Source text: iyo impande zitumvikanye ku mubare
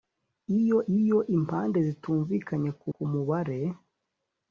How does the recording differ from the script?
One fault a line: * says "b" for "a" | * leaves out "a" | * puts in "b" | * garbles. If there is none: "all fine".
* puts in "iyo"
* puts in "ku"